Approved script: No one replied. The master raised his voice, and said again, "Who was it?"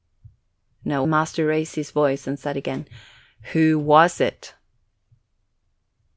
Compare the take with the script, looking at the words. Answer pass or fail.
fail